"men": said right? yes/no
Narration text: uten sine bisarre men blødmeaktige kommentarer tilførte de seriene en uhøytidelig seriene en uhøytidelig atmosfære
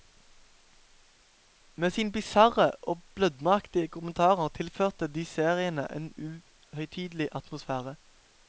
no